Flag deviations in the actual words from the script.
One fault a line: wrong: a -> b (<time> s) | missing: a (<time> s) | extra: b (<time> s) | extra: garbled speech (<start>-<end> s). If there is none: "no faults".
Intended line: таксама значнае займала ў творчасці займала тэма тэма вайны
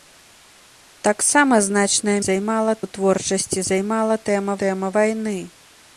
no faults